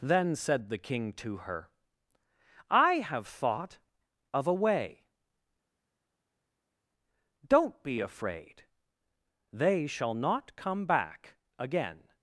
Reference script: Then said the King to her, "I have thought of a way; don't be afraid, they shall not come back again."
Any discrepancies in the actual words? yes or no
no